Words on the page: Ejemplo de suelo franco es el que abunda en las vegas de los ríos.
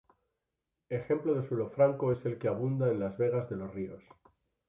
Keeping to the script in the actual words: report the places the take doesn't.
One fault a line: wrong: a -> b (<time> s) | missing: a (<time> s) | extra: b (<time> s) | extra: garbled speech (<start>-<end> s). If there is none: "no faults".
no faults